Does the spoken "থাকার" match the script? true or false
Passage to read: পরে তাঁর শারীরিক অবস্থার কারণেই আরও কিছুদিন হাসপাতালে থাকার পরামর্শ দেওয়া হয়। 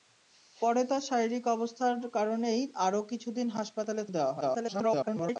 false